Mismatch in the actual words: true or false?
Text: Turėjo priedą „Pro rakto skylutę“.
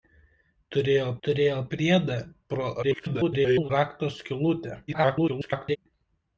true